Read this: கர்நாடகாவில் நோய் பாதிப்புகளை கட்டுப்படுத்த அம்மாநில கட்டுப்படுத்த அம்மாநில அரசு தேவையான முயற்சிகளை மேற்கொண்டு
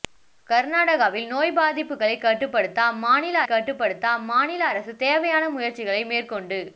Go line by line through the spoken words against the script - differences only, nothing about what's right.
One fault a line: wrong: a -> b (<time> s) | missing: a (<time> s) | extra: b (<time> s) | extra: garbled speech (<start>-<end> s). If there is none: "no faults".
no faults